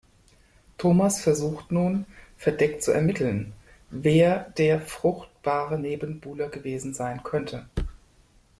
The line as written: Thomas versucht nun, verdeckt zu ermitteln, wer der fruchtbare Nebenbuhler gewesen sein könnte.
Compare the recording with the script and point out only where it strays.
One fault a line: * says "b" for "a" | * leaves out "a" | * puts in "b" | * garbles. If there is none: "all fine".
all fine